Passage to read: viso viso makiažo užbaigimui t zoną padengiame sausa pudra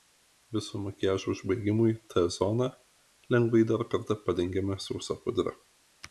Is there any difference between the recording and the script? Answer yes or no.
yes